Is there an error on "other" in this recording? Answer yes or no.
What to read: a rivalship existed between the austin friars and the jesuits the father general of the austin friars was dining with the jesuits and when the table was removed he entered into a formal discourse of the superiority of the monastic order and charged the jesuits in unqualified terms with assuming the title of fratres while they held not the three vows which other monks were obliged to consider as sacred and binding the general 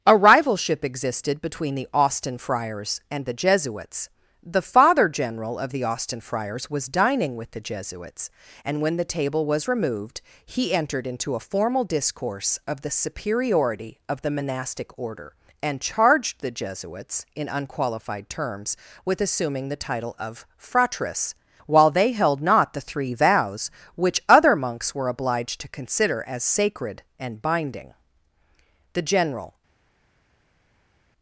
no